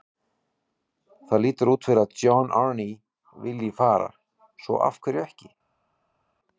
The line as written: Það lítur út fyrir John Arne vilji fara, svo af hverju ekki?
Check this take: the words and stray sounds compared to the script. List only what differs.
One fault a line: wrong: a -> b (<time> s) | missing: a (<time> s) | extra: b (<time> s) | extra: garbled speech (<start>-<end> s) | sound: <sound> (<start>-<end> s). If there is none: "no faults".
extra: að (2.0 s)